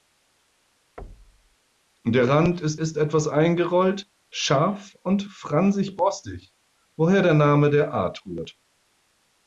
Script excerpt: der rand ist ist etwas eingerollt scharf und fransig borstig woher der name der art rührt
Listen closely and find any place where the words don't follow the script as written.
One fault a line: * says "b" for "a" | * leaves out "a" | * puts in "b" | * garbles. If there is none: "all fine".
all fine